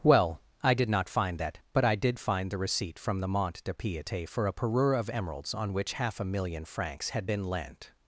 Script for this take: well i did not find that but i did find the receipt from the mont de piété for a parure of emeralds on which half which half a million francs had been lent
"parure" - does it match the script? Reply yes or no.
yes